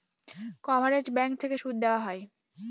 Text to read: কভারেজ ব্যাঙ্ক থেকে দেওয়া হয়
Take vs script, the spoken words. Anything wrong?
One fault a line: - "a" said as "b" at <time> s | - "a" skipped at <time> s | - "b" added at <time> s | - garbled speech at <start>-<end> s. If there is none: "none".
- "সুদ" added at 1.5 s